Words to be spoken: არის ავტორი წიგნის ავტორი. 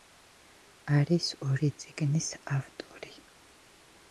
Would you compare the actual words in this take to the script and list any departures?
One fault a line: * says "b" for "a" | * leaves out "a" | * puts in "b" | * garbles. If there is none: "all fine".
* says "ორი" for "ავტორი"